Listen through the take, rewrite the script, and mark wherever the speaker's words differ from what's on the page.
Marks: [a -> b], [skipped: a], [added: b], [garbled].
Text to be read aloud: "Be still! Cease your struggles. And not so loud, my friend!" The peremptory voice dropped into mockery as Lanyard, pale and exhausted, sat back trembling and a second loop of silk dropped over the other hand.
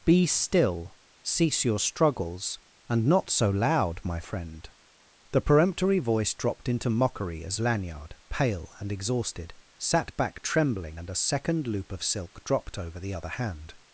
"Be still! Cease your struggles. And not so loud, my friend!" The peremptory voice dropped into mockery as Lanyard, pale and exhausted, sat back trembling and a second loop of silk dropped over the other hand.